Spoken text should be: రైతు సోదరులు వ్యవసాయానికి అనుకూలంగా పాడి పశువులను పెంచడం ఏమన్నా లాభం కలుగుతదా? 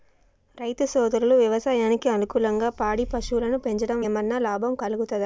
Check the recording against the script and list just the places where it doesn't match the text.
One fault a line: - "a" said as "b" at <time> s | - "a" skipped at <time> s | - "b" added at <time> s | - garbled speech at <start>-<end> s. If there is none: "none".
none